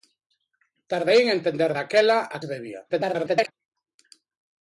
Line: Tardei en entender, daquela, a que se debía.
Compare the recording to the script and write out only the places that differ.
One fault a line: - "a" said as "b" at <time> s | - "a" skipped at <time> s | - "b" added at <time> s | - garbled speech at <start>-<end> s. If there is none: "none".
- "que" skipped at 2.4 s
- garbled speech at 2.9-3.5 s